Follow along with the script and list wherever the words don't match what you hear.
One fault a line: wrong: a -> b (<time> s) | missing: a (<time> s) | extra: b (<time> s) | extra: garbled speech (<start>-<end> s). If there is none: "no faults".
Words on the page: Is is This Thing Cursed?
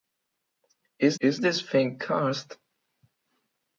no faults